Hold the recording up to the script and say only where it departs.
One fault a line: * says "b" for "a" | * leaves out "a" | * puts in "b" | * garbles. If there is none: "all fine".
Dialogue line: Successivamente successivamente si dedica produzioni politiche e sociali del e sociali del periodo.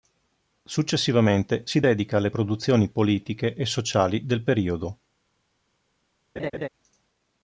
* leaves out "successivamente"
* puts in "alle"
* leaves out "e sociali del"